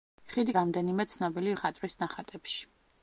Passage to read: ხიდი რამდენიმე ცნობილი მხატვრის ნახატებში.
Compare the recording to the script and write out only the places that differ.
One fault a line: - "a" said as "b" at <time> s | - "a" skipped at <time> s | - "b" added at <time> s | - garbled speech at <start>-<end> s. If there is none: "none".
none